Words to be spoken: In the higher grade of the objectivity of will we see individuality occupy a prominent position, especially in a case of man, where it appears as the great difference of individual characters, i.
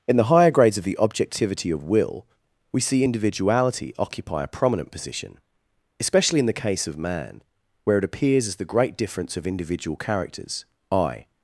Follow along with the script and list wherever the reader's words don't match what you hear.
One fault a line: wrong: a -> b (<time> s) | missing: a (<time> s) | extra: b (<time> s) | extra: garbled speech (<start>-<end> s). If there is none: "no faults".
wrong: grade -> grades (0.5 s)
wrong: a -> the (6.5 s)